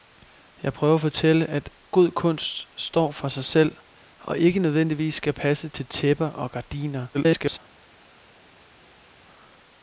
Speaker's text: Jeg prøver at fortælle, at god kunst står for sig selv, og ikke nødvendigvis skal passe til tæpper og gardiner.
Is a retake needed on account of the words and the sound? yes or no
yes